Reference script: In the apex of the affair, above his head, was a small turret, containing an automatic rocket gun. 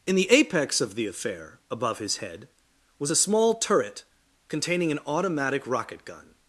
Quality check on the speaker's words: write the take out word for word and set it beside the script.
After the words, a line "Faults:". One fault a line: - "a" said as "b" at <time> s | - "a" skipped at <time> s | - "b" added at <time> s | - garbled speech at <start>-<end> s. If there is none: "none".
In the apex of the affair, above his head, was a small turret, containing an automatic rocket gun.
Faults:
none